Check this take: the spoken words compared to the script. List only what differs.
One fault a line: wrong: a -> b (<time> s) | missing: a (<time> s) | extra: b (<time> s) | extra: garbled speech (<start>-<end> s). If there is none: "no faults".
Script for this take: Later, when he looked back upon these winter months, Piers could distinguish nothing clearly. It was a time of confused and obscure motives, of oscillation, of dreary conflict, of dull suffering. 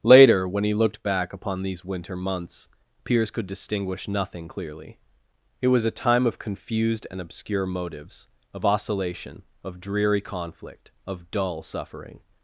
no faults